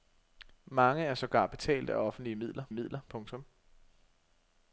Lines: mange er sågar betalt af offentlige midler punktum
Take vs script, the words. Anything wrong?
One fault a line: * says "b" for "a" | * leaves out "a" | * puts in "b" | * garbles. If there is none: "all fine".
* puts in "midler"